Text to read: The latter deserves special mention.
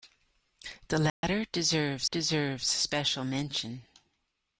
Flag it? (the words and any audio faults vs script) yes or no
yes